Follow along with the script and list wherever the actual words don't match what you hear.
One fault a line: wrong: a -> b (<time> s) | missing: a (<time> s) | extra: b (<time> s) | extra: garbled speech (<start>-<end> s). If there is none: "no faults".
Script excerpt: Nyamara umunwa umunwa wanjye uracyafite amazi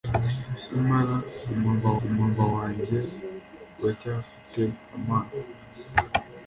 no faults